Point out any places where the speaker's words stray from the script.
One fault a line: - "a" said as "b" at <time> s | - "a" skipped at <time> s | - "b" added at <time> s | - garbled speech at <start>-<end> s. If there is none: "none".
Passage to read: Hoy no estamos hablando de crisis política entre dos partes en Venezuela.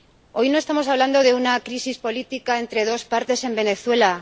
- "una" added at 1.4 s